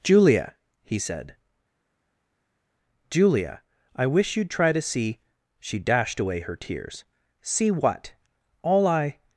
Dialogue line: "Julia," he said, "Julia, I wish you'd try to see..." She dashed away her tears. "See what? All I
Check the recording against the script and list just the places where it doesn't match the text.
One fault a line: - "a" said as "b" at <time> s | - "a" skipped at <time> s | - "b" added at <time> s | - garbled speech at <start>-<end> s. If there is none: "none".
none